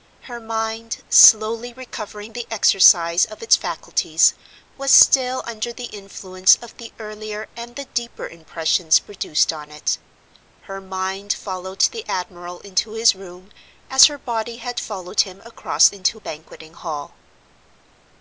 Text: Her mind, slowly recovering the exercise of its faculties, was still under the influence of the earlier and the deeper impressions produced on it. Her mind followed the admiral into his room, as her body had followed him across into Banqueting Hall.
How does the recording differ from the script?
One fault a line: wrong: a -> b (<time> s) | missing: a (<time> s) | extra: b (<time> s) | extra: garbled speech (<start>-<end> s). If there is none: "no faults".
no faults